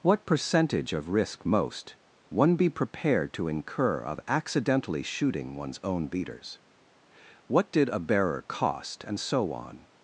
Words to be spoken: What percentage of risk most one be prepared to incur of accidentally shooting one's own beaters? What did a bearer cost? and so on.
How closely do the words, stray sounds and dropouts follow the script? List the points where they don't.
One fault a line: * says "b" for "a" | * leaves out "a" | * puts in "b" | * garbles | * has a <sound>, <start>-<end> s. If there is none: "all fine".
all fine